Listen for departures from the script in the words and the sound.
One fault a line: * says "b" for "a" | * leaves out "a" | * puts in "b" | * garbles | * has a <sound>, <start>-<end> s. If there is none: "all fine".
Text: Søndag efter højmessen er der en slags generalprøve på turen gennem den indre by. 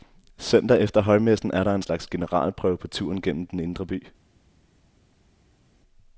all fine